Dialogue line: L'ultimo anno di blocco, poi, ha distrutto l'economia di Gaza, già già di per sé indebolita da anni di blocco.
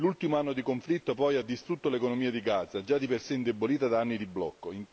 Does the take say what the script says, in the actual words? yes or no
no